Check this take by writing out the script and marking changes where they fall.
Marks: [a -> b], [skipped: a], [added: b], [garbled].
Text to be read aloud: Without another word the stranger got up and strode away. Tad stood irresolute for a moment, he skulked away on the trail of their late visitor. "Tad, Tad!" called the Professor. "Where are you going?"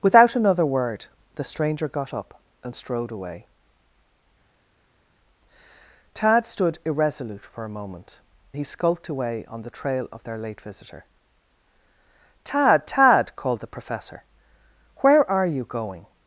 Without another word the stranger got up and strode away. Tad stood irresolute for a moment, he skulked away on the trail of their late visitor. "Tad, Tad!" called the Professor. "Where are you going?"